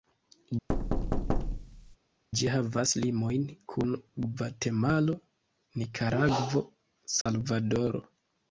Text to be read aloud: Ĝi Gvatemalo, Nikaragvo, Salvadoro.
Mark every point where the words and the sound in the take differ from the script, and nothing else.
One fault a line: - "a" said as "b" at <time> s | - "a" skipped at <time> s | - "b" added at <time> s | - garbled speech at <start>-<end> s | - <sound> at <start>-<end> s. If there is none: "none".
- thud at 0.7-2.0 s
- "havas limojn kun" added at 2.5 s
- dropout at 7.2-7.3 s